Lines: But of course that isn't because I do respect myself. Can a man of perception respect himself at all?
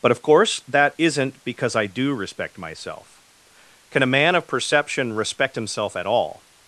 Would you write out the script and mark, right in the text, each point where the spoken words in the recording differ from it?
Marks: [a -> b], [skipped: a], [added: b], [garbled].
But of course that isn't because I do respect myself. Can a man of perception respect himself at all?